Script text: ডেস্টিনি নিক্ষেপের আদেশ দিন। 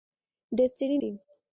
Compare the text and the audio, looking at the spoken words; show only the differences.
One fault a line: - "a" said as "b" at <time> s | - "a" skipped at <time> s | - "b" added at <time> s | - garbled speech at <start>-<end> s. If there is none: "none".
- "নিক্ষেপের আদেশ" skipped at 1.0 s